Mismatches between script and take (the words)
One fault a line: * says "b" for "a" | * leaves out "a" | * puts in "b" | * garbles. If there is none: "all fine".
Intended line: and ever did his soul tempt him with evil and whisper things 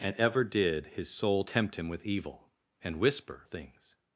all fine